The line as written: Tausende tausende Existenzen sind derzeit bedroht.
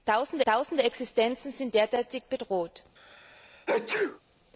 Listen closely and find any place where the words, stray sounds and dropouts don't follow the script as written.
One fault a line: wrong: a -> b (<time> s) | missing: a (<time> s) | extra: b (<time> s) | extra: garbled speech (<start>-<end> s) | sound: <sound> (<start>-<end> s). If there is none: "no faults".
sound: sneeze (3.0-4.2 s)